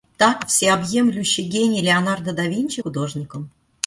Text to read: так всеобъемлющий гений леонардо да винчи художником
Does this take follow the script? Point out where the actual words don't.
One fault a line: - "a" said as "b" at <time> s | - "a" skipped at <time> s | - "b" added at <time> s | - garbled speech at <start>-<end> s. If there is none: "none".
none